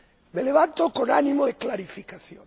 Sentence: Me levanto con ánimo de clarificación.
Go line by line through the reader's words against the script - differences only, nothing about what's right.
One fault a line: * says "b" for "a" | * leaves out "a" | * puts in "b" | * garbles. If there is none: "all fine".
all fine